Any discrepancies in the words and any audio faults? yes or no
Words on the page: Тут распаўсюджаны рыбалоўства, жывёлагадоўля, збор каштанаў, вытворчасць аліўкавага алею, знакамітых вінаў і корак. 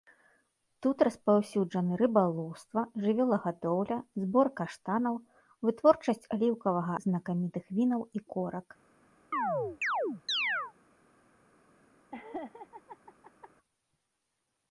yes